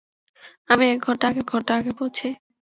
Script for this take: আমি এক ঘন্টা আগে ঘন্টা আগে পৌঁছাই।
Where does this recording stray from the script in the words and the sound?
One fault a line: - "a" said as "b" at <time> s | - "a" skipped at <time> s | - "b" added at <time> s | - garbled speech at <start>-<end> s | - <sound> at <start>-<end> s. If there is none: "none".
none